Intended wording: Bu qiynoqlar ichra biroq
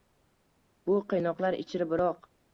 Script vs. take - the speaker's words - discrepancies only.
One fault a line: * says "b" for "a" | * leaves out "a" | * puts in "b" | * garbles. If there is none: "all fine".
all fine